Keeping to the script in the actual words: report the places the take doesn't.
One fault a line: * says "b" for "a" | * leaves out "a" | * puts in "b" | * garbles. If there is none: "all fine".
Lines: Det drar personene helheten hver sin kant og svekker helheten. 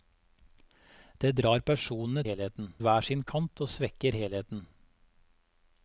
all fine